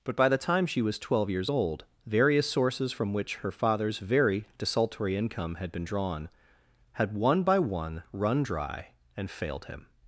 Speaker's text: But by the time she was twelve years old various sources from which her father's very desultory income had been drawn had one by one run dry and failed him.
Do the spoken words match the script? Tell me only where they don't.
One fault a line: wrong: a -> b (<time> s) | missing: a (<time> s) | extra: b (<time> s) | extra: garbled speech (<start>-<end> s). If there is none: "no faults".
no faults